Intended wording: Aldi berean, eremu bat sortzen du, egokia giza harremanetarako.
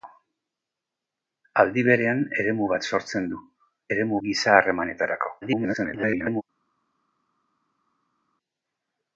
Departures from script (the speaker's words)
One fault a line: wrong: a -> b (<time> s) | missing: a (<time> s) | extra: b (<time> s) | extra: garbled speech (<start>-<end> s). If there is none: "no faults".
wrong: egokia -> eremu (3.9 s)
extra: garbled speech (5.4-6.4 s)